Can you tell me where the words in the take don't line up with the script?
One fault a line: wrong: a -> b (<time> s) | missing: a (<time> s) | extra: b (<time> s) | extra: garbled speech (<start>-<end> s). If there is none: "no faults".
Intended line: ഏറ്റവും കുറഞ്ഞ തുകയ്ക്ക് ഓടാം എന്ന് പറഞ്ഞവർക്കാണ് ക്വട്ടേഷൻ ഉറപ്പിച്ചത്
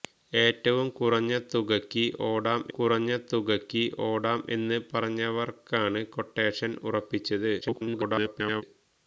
extra: കുറഞ്ഞ തുകയ്ക്ക് ഓടാം (2.7 s)
extra: garbled speech (7.6-8.6 s)